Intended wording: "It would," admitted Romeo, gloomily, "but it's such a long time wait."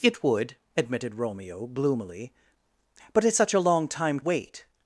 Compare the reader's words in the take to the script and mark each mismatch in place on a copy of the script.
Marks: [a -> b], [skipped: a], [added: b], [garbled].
"It would," admitted Romeo, gloomily, "but it's such a long time wait."